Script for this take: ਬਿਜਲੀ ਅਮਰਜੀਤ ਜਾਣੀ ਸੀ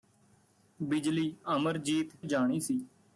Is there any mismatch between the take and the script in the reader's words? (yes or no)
no